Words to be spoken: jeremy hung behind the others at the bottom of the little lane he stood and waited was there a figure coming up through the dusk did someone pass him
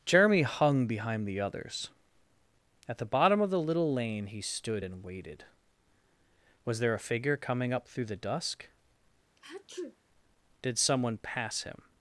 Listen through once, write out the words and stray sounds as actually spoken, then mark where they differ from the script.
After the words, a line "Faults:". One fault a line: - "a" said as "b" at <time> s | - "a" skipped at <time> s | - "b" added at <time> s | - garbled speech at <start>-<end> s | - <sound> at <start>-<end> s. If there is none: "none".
jeremy hung behind the others at the bottom of the little lane he stood and waited was there a figure coming up through the dusk did someone pass him
Faults:
- sneeze at 9.4-10.0 s